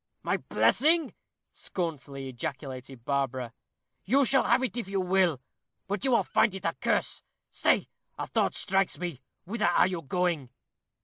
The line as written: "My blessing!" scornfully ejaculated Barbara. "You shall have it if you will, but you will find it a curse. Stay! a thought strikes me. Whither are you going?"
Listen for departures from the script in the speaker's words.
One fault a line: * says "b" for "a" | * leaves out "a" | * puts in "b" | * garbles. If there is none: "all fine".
all fine